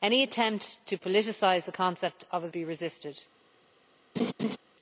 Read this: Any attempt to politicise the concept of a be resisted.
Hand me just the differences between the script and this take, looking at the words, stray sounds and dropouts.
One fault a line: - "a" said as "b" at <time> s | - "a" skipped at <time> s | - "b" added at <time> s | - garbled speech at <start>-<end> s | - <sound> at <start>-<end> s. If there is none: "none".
- laugh at 4.2-4.6 s